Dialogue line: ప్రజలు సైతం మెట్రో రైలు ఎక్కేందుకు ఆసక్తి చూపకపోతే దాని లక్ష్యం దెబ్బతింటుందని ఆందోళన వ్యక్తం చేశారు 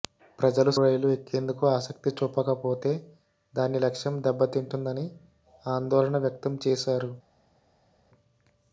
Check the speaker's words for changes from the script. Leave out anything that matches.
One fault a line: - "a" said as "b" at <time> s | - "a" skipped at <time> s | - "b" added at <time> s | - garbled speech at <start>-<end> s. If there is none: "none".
- "సైతం మెట్రో" skipped at 0.7 s